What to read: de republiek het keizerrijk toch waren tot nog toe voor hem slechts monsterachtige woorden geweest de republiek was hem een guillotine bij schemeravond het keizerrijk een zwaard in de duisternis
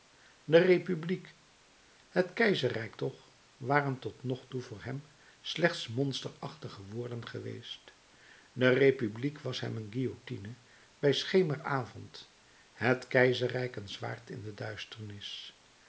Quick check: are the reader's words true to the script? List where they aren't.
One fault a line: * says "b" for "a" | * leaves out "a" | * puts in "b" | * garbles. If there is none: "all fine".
all fine